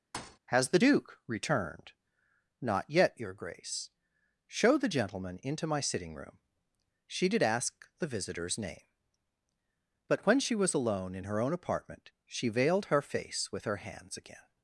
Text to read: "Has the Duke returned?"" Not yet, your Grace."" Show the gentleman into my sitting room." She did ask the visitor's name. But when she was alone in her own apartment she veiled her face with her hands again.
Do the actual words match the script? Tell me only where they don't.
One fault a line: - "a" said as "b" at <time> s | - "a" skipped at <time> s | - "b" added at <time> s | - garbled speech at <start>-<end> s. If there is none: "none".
none